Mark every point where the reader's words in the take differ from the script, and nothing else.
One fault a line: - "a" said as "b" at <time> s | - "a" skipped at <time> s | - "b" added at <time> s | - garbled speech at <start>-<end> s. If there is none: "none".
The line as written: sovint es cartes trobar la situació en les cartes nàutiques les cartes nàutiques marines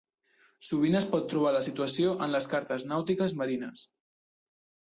- "cartes" said as "pot" at 1.1 s
- "les cartes nàutiques" skipped at 3.4 s